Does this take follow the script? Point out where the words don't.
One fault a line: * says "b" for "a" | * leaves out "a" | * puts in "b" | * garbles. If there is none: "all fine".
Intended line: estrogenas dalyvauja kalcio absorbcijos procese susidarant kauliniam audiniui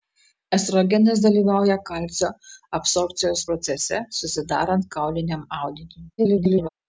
* garbles